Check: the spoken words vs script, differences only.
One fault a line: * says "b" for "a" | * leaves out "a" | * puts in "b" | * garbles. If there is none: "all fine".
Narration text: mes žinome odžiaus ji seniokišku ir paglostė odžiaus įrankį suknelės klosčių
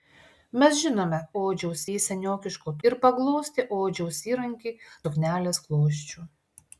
all fine